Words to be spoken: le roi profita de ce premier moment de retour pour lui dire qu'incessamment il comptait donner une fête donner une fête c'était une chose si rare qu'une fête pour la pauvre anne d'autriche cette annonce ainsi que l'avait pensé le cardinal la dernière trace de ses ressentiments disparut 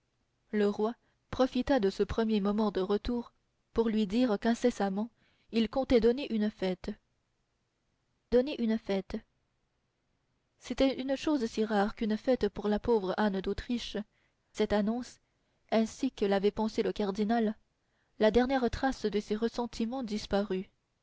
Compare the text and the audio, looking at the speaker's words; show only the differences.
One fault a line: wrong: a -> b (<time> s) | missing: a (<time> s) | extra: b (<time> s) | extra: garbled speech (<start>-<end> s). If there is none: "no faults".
no faults